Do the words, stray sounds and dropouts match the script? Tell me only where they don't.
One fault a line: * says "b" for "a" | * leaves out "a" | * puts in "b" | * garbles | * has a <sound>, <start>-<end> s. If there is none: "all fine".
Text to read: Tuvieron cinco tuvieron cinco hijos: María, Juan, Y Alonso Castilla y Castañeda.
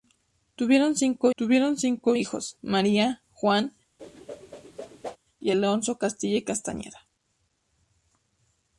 * has a whoosh, 4.0-5.2 s